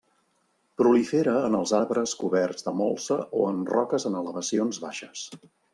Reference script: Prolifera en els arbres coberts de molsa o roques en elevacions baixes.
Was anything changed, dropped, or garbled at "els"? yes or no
no